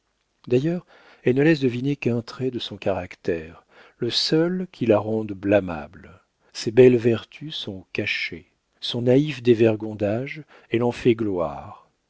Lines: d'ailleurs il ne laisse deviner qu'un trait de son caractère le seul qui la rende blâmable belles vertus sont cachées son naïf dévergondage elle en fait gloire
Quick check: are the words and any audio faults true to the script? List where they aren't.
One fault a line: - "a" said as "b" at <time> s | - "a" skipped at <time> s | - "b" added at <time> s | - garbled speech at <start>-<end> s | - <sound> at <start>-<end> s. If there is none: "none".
- "il" said as "elle" at 1.2 s
- "ses" added at 6.5 s